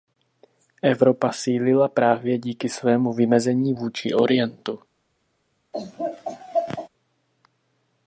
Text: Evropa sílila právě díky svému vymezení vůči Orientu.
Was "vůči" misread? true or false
false